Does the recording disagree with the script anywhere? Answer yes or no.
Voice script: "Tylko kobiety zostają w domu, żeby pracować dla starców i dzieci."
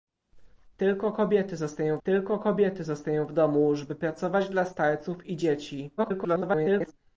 yes